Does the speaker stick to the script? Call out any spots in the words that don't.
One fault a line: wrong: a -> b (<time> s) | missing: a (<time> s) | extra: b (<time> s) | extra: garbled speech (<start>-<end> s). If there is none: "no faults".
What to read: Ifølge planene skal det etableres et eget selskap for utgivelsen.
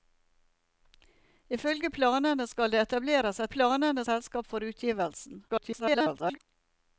wrong: eget -> planene (3.5 s)
extra: garbled speech (5.5-6.4 s)